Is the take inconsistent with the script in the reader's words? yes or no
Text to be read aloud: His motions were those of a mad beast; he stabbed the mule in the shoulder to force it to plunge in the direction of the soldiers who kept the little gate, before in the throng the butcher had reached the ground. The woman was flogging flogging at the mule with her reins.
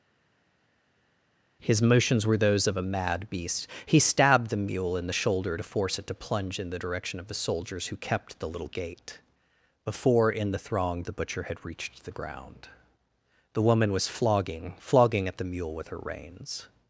no